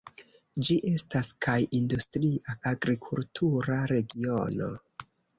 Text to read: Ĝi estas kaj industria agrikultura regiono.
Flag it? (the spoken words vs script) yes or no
no